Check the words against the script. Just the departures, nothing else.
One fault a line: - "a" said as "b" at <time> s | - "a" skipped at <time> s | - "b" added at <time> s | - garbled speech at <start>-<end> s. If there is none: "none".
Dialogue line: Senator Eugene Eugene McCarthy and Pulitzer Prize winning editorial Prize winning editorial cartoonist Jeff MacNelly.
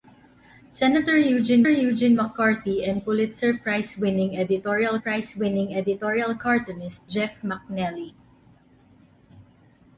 none